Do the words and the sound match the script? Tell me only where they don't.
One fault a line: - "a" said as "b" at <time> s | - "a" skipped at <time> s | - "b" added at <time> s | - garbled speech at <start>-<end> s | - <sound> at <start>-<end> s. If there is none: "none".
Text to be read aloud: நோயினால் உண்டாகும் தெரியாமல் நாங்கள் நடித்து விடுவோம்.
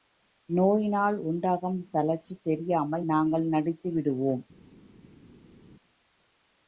- "தளர்ச்சி" added at 1.9 s